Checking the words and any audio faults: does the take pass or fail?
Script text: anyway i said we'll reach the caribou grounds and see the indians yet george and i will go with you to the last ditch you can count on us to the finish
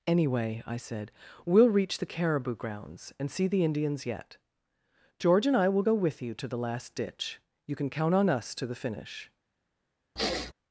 fail